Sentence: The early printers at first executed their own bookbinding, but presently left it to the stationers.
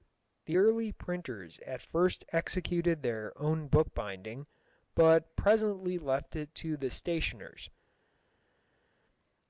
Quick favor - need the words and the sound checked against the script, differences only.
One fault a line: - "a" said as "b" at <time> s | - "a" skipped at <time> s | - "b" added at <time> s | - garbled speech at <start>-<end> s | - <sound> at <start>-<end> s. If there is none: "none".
none